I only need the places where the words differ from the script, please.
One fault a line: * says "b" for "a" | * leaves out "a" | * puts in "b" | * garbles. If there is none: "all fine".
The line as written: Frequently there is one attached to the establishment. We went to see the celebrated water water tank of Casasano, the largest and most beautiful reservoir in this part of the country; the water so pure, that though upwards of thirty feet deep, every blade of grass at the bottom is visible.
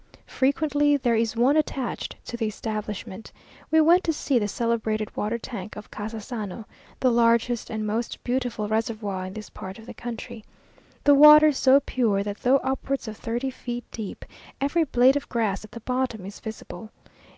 * leaves out "water"